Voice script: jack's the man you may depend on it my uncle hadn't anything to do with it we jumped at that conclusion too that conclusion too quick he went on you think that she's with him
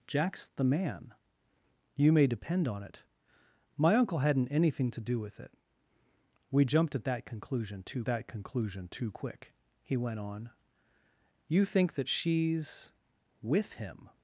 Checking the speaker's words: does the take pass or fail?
pass